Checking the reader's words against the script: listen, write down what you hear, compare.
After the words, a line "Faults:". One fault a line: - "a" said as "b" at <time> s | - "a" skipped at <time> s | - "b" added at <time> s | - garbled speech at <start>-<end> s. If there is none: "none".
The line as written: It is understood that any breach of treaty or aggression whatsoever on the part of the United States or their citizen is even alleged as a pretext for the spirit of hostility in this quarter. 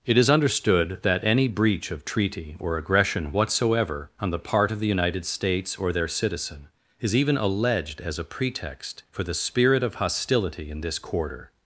It is understood that any breach of treaty or aggression whatsoever on the part of the United States or their citizen is even alleged as a pretext for the spirit of hostility in this quarter.
Faults:
none